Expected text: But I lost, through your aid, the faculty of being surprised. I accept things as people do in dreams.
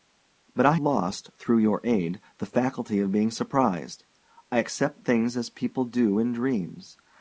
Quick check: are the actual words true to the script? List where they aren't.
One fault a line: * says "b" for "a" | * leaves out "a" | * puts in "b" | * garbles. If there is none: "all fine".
all fine